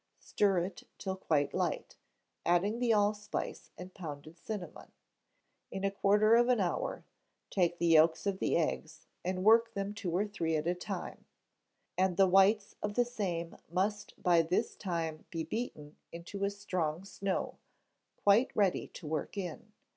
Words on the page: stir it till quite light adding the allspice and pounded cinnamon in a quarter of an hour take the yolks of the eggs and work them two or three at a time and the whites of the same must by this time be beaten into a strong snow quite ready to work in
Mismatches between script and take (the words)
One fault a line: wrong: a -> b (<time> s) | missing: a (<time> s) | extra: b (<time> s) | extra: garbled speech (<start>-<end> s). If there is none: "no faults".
no faults